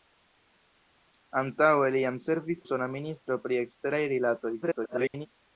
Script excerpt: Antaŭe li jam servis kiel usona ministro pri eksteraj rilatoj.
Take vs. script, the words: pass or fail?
fail